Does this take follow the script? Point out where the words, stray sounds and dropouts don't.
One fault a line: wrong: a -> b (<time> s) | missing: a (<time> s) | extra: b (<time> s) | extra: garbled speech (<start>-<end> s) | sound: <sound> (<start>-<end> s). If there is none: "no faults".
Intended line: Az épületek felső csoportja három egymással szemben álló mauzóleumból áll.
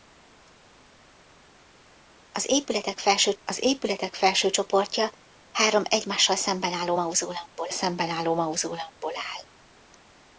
extra: az épületek felső (3.4 s)
extra: szemben álló mauzóleumból (7.7 s)